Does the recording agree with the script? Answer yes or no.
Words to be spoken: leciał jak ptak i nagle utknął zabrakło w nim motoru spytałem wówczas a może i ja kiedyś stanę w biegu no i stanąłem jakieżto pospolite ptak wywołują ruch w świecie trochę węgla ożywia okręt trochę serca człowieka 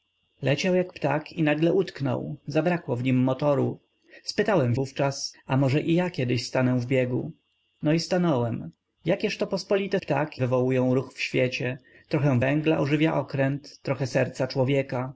yes